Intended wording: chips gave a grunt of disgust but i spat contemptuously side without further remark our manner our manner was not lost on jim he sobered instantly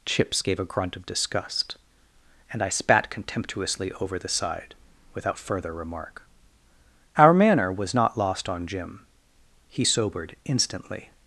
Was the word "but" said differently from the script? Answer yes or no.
yes